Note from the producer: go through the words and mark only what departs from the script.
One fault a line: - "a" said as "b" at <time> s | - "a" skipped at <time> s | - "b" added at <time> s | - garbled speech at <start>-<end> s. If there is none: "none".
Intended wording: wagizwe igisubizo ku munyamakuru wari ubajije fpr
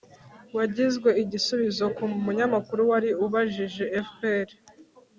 none